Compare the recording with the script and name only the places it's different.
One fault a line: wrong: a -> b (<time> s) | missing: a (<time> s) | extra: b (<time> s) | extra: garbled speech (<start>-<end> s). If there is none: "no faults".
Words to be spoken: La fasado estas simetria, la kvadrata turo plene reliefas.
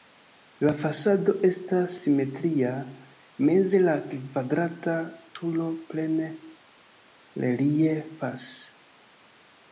extra: meze (3.5 s)